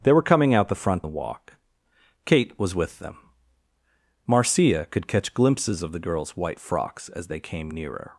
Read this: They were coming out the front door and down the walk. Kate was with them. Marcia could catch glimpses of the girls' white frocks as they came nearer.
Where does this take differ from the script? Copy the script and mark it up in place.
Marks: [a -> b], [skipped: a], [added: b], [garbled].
They were coming out the front [skipped: door and down] the walk. Kate was with them. Marcia could catch glimpses of the girls' white frocks as they came nearer.